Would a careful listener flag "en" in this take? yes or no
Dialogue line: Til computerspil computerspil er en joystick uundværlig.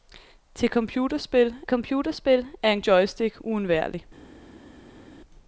no